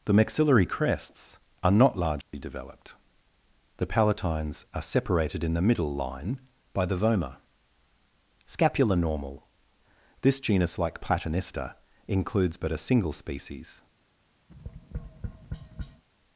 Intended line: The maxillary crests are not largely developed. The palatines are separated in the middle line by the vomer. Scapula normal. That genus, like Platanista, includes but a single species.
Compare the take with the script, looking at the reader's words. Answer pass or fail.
fail